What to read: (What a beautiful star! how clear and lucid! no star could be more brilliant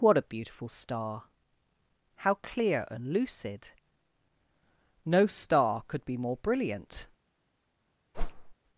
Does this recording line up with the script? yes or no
yes